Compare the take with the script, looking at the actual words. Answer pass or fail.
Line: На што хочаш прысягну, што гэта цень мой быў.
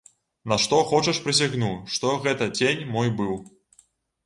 pass